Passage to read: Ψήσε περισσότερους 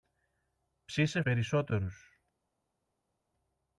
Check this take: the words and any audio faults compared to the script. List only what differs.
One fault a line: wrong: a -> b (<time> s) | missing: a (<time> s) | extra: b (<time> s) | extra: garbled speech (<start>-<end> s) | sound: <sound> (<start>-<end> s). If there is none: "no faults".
no faults